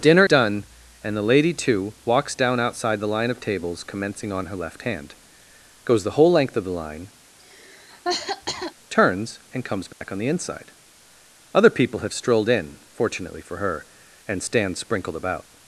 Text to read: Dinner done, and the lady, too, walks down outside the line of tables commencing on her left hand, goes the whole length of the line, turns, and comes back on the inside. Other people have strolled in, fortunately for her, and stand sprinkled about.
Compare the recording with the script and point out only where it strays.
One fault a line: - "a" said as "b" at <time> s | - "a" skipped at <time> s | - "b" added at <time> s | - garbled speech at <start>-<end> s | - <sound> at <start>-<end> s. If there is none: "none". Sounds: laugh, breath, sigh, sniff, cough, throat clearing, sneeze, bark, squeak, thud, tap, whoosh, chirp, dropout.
- cough at 7.4-8.7 s
- dropout at 9.9-10.0 s